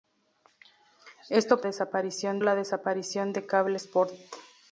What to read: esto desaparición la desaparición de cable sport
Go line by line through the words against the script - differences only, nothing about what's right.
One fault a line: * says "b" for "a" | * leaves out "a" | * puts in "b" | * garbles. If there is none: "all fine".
all fine